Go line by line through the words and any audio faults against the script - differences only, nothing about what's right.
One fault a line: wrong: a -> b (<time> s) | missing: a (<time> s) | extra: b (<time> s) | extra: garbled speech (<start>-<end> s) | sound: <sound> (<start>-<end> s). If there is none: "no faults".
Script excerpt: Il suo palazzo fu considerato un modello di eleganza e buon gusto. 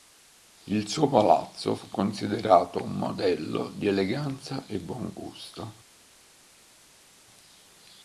no faults